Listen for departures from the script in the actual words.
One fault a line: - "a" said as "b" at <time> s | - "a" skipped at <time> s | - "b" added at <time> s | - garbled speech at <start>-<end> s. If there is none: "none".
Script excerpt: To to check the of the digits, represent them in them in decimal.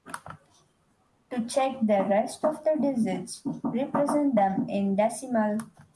- "to" skipped at 1.4 s
- "rest" added at 2.1 s
- "them in" skipped at 4.9 s